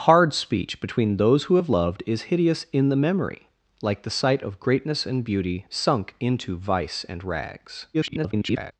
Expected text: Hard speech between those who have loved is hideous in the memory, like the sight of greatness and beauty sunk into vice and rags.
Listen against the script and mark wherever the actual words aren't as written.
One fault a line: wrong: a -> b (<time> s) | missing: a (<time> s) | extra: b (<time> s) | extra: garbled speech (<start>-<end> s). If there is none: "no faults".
extra: garbled speech (7.9-8.7 s)